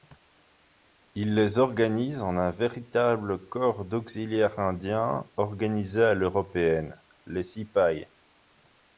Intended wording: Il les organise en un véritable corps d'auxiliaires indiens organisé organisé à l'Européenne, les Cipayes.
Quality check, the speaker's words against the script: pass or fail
fail